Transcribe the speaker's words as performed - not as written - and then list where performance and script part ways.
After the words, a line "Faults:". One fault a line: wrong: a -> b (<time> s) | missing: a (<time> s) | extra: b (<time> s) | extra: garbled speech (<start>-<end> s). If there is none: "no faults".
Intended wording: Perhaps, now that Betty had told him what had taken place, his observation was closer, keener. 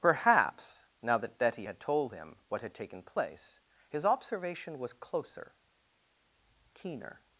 Perhaps, now that Betty had told him what had taken place, his observation was closer, keener.
Faults:
no faults